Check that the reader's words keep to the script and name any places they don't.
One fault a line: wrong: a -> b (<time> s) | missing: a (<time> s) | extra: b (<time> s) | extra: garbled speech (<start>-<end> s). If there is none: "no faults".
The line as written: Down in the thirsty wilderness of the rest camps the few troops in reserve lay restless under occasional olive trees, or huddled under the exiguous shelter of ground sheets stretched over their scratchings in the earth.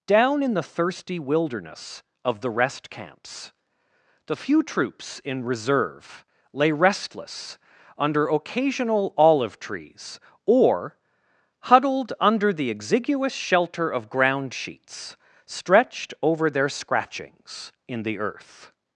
no faults